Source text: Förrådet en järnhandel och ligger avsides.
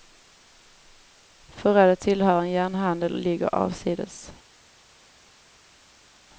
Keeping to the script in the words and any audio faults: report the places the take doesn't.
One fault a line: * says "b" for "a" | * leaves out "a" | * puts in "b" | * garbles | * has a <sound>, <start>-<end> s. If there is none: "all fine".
* puts in "tillhör"